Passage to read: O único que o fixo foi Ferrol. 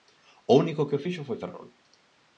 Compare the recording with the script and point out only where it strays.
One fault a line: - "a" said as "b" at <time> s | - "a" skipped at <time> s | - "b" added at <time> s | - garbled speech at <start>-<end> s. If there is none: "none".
none